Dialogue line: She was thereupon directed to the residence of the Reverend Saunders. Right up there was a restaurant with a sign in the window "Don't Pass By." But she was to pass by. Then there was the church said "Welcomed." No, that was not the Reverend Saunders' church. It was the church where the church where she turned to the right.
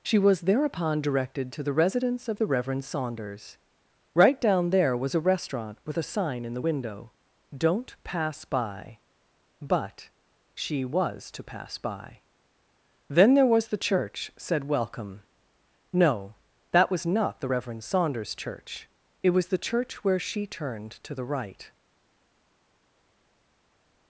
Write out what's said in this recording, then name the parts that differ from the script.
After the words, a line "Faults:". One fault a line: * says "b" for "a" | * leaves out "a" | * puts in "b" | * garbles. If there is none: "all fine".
She was thereupon directed to the residence of the Reverend Saunders. Right down there was a restaurant with a sign in the window "Don't Pass By." But she was to pass by. Then there was the church said "Welcome." No, that was not the Reverend Saunders' church. It was the church where she turned to the right.
Faults:
* says "down" for "up"
* says "Welcome" for "Welcomed"
* leaves out "the church where"